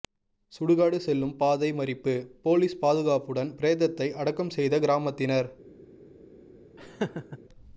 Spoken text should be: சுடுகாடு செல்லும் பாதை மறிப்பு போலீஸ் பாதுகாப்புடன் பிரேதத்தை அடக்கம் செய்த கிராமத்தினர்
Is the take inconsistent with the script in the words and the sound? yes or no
yes